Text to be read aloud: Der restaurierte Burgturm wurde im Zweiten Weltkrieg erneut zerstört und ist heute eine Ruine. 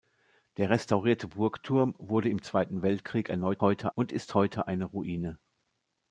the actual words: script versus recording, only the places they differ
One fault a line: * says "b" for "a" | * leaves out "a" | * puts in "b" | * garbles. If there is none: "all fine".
* says "heute" for "zerstört"